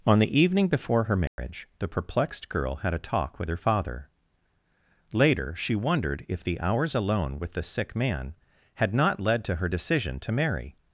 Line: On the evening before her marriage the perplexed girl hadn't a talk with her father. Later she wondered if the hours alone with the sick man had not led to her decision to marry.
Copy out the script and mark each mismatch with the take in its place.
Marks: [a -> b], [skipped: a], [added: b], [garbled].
On the evening before her marriage the perplexed girl [hadn't -> had] a talk with her father. Later she wondered if the hours alone with the sick man had not led to her decision to marry.